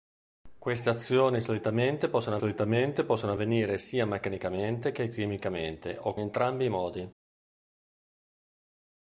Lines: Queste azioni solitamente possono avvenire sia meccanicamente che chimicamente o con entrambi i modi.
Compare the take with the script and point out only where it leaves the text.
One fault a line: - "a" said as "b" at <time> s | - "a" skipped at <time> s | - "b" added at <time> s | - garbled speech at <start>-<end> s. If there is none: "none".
- "solitamente possono" added at 2.3 s
- "con" skipped at 6.2 s